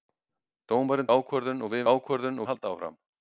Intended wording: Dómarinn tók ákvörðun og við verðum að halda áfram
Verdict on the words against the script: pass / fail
fail